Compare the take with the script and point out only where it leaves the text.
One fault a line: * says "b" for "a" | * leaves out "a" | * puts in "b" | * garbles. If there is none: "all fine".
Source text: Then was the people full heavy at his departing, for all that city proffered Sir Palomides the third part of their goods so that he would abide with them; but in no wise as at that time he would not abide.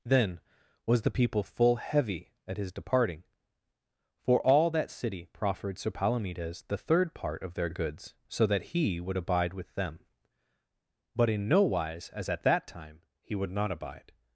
all fine